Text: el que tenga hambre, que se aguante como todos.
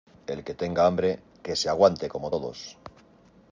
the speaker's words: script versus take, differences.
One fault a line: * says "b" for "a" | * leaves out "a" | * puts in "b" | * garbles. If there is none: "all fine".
all fine